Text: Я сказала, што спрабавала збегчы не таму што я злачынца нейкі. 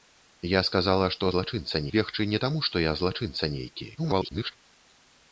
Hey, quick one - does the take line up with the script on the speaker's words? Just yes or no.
no